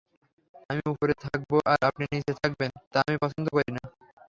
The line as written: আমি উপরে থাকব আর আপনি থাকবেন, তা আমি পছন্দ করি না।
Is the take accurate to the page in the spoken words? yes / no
no